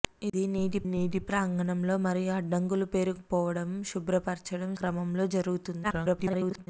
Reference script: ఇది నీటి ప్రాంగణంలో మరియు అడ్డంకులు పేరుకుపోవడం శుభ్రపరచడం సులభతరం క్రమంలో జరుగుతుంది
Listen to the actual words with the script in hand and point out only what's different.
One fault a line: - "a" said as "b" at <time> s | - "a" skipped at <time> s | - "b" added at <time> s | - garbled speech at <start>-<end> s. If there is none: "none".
- "నీటి" added at 0.9 s
- "సులభతరం" skipped at 4.7 s
- garbled speech at 5.8-6.7 s